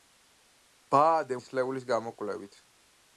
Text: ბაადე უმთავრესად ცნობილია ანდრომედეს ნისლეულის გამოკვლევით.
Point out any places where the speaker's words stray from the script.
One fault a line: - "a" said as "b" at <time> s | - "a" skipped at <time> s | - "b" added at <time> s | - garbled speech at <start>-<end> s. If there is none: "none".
- "უმთავრესად ცნობილია ანდრომედეს" skipped at 1.4 s